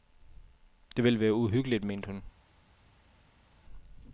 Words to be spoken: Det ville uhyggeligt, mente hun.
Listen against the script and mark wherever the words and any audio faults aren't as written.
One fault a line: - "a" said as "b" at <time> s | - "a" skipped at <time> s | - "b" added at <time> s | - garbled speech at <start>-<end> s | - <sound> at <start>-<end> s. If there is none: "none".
- "være" added at 1.2 s